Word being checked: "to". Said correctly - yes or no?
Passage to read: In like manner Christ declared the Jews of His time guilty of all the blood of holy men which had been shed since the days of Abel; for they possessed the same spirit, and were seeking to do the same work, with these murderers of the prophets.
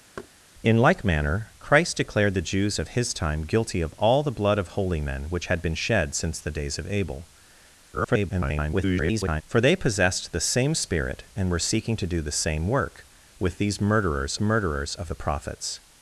yes